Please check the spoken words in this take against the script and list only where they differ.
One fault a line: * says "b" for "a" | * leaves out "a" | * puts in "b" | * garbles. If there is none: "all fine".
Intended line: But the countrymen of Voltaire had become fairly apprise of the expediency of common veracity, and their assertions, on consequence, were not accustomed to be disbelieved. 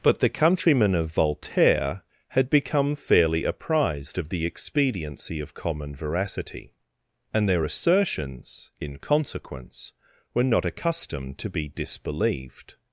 * says "apprised" for "apprise"
* says "in" for "on"